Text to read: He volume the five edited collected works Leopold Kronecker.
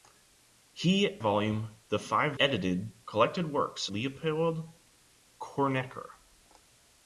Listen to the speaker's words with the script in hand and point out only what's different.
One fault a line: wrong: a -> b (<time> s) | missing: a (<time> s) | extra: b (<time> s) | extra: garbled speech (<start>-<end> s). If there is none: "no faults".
no faults